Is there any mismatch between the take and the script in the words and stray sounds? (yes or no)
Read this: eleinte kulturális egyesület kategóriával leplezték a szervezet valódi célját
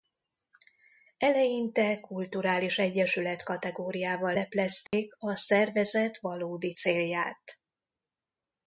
yes